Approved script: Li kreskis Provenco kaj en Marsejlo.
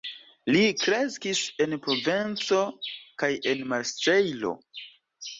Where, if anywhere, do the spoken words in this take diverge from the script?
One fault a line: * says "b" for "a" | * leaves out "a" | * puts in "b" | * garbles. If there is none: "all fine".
* puts in "en"